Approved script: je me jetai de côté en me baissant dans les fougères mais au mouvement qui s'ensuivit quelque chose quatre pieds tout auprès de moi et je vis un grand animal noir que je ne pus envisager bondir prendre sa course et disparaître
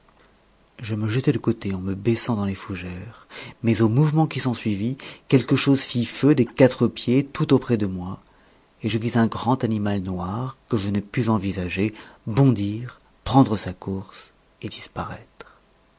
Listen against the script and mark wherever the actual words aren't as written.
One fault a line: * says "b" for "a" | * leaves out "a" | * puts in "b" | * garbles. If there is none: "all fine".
* puts in "fit feu des"